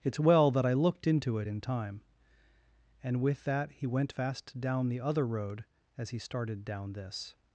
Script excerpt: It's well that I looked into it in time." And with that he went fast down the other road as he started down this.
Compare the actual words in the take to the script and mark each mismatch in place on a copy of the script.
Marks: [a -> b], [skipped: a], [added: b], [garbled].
It's well that I looked into it in time." And with that he went fast down the other road as he started down this.